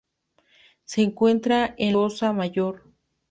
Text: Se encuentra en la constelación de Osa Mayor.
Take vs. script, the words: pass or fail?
fail